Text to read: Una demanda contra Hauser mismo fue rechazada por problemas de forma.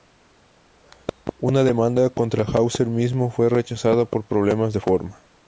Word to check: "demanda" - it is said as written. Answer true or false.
true